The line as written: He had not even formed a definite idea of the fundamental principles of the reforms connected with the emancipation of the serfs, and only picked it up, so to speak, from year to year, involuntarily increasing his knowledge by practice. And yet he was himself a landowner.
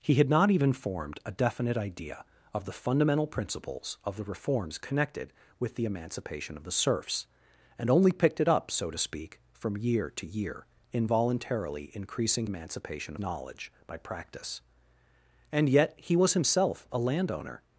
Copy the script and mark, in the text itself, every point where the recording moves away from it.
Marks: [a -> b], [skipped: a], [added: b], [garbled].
He had not even formed a definite idea of the fundamental principles of the reforms connected with the emancipation of the serfs, and only picked it up, so to speak, from year to year, involuntarily increasing [his -> emancipation] knowledge by practice. And yet he was himself a landowner.